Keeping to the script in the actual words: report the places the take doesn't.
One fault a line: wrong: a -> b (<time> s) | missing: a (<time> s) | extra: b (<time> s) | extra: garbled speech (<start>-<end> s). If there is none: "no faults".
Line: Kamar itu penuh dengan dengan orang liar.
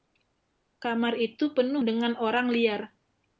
missing: dengan (2.2 s)